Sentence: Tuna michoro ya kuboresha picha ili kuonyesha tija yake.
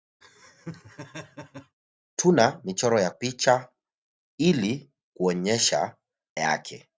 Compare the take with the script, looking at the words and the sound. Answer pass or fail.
fail